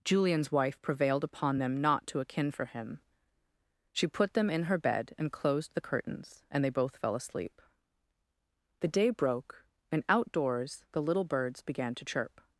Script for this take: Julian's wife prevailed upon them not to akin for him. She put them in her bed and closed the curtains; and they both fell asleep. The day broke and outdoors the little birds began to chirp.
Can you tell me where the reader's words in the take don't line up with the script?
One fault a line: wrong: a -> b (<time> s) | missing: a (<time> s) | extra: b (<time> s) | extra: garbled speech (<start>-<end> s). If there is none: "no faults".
no faults